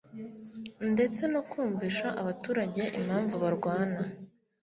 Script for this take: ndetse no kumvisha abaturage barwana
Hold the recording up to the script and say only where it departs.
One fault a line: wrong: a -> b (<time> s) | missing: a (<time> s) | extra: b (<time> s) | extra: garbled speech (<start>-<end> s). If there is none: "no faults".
extra: impamvu (3.0 s)